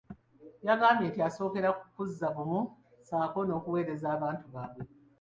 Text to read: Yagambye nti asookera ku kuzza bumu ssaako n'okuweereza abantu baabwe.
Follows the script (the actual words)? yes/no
yes